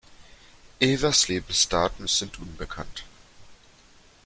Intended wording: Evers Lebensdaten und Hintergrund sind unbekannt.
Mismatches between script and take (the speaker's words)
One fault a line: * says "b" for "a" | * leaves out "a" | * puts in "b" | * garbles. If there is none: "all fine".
* leaves out "und Hintergrund"